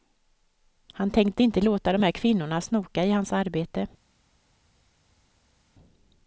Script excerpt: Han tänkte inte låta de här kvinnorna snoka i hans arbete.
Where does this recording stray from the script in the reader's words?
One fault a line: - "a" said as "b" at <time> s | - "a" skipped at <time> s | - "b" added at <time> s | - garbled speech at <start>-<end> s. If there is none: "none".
none